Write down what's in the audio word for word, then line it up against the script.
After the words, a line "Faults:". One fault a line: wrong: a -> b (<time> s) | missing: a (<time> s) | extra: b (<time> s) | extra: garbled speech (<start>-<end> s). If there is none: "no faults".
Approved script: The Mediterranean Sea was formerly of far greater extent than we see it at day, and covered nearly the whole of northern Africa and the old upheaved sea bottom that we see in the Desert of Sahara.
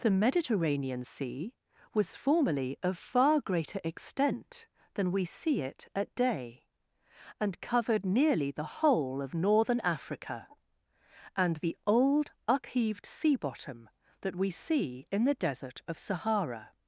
The Mediterranean Sea was formerly of far greater extent than we see it at day, and covered nearly the whole of northern Africa and the old upheaved sea bottom that we see in the Desert of Sahara.
Faults:
no faults